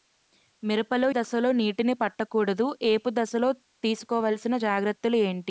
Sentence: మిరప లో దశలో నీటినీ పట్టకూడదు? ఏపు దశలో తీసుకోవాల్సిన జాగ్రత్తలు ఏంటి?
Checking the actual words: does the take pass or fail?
pass